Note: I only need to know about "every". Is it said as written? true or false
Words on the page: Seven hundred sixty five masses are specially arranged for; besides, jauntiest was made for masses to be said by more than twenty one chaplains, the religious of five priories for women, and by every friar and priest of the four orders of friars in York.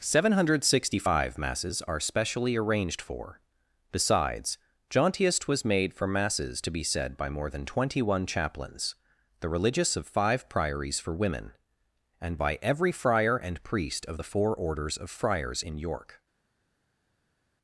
true